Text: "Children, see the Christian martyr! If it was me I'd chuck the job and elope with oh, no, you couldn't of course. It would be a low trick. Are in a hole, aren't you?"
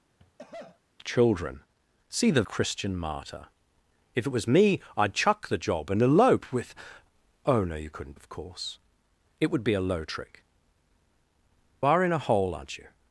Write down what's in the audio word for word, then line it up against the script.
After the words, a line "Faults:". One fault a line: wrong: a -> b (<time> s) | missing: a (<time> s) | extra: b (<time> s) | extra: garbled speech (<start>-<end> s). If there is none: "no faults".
"Children, see the Christian martyr! If it was me I'd chuck the job and elope with oh, no, you couldn't of course. It would be a low trick. Are in a hole, aren't you?"
Faults:
no faults